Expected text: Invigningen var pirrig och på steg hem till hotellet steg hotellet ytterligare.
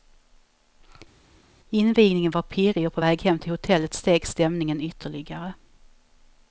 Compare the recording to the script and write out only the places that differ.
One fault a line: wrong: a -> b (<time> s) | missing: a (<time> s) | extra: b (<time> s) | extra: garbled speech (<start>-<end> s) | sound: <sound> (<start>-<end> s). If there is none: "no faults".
wrong: steg -> väg (3.0 s)
wrong: hotellet -> stämningen (4.3 s)